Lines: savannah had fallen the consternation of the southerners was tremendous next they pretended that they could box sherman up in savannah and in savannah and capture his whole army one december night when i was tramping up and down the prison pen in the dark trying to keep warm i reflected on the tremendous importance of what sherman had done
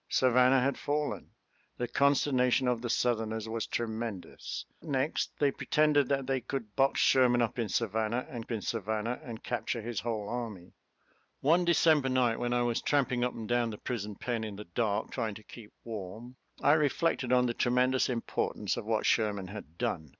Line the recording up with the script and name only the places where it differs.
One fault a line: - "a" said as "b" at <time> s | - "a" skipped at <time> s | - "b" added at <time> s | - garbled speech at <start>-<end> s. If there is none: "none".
none